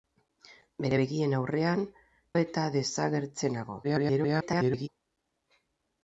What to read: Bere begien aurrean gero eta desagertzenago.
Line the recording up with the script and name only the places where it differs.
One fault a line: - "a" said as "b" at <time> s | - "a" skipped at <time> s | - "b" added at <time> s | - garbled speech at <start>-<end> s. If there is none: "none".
- "gero" skipped at 1.8 s
- garbled speech at 3.8-4.9 s